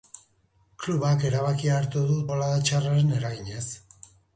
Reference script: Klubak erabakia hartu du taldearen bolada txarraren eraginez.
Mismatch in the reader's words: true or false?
true